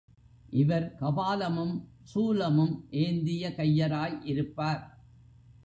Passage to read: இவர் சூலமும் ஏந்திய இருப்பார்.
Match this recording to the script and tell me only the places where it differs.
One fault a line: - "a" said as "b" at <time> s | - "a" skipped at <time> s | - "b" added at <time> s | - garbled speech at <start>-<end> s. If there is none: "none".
- "கபாலமும்" added at 1.0 s
- "கையராய்" added at 3.5 s